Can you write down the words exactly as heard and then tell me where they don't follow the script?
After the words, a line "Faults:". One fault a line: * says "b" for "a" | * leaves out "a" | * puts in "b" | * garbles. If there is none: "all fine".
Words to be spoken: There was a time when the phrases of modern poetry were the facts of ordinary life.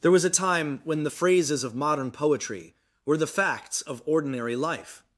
There was a time when the phrases of modern poetry were the facts of ordinary life.
Faults:
all fine